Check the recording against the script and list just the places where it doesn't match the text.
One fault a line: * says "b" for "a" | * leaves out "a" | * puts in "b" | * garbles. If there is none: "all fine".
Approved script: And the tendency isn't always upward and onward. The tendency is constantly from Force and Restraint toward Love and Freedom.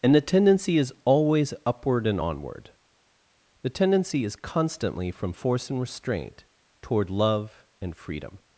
* says "is" for "isn't"